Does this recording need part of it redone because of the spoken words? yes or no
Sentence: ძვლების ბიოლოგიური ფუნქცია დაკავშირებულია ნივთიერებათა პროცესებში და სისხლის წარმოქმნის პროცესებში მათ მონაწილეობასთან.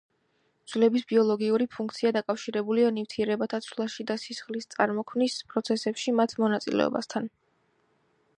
yes